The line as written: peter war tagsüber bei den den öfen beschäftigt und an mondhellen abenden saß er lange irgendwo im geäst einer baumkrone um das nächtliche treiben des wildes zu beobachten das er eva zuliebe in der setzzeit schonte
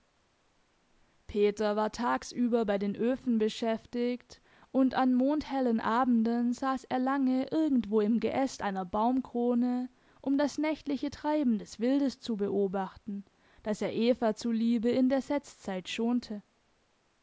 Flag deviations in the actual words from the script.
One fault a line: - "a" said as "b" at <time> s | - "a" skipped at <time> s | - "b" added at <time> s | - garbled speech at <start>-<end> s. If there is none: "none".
- "den" skipped at 3.0 s